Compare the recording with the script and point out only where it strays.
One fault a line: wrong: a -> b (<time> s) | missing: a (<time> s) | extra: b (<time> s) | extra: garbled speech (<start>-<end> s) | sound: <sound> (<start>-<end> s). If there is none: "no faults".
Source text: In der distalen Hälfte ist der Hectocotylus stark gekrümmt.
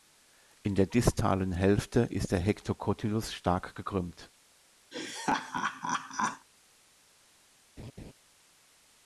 sound: laugh (4.9-6.5 s)
sound: laugh (7.8-8.1 s)